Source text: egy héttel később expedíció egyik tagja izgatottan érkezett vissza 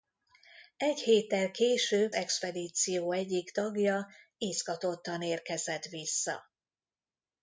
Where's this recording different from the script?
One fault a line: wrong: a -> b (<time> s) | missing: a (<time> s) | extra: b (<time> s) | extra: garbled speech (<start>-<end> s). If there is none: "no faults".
no faults